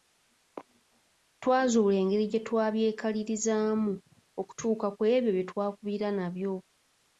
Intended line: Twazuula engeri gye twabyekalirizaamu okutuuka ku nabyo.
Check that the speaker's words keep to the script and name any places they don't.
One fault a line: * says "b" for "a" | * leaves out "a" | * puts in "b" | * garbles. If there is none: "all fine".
* puts in "ebyo bye twakubira"